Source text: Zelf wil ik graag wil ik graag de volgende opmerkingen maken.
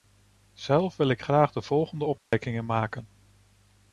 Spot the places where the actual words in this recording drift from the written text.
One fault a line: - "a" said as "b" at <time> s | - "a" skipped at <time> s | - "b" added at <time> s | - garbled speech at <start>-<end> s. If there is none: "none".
- "wil ik graag" skipped at 1.5 s